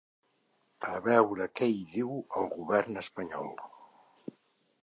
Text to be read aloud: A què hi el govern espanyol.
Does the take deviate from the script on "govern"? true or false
false